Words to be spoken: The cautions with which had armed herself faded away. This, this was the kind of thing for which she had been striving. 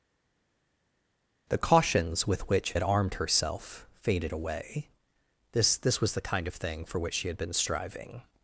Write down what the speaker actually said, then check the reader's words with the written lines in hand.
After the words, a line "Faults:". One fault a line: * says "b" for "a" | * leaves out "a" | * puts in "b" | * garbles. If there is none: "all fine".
The cautions with which had armed herself faded away. This, this was the kind of thing for which she had been striving.
Faults:
all fine